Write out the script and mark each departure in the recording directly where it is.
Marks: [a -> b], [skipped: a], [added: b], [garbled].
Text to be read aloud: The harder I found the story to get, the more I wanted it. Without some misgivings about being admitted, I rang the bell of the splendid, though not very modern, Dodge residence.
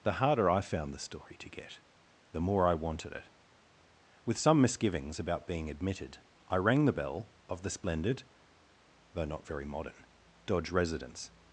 The harder I found the story to get, the more I wanted it. [Without -> With] some misgivings about being admitted, I rang the bell of the splendid, though not very modern, Dodge residence.